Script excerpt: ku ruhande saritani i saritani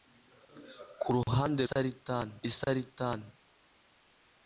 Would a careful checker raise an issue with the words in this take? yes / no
no